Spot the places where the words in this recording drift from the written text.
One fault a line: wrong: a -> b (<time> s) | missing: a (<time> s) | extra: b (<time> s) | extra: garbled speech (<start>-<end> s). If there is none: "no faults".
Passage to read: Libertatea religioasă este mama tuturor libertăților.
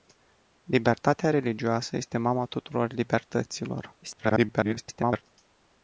extra: garbled speech (4.0-5.2 s)